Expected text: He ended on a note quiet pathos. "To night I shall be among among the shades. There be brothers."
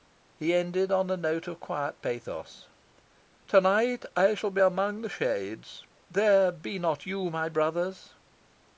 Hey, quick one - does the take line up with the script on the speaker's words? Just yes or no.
no